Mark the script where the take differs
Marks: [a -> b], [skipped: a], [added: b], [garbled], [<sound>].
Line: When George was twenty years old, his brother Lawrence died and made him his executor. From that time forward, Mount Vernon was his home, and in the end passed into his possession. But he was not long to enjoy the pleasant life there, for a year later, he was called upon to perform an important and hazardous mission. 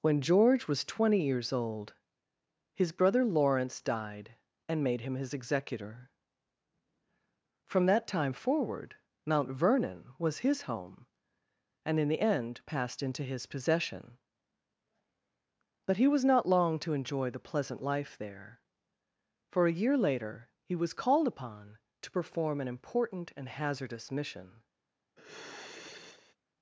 When George was twenty years old, his brother Lawrence died and made him his executor. From that time forward, Mount Vernon was his home, and in the end passed into his possession. But he was not long to enjoy the pleasant life there, for a year later, he was called upon to perform an important and hazardous mission. [sigh]